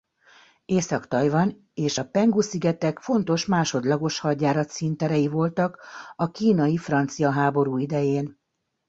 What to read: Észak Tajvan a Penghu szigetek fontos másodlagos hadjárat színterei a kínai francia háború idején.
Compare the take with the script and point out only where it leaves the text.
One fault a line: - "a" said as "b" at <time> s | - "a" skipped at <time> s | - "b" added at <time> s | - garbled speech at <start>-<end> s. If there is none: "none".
- "és" added at 1.7 s
- "voltak" added at 5.3 s